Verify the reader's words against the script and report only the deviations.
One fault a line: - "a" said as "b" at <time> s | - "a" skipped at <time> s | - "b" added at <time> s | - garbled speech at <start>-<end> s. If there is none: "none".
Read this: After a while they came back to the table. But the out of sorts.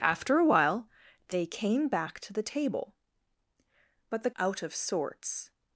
none